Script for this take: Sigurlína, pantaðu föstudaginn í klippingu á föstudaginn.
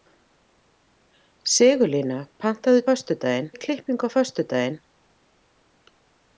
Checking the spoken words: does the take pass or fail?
pass